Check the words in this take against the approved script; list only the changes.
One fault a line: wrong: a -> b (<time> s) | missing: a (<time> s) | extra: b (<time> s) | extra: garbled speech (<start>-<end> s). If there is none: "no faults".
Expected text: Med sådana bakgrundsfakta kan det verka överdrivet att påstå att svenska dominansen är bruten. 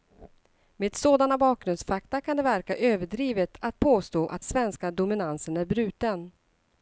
no faults